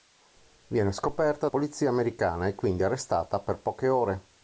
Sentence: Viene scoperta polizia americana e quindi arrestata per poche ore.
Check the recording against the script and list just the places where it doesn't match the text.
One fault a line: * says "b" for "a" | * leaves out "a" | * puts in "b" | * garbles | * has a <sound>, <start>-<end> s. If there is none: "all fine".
all fine